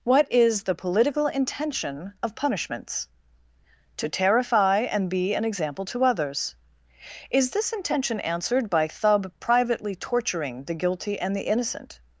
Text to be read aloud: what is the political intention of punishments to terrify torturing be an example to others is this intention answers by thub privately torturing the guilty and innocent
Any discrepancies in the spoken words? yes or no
yes